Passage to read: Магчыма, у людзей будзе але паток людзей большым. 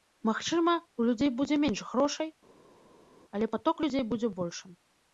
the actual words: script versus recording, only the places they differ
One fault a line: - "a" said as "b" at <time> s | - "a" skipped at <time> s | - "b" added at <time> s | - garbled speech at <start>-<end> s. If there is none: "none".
- "менш грошай" added at 1.7 s
- "будзе" added at 4.1 s